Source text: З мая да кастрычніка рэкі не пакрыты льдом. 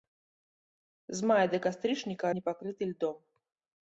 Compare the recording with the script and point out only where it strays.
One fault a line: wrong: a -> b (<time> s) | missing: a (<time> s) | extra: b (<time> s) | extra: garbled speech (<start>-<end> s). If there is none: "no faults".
missing: рэкі (2.3 s)